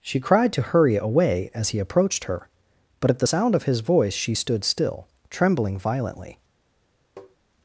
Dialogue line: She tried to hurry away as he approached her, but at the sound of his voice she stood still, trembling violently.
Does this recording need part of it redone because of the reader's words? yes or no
yes